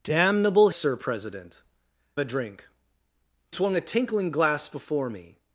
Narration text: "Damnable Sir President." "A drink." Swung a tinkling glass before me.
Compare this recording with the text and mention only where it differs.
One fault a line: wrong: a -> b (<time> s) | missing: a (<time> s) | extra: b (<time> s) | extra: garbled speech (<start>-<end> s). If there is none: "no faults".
no faults